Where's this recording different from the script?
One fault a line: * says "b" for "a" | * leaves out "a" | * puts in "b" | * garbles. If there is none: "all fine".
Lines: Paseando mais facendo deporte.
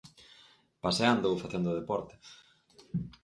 * says "ou" for "mais"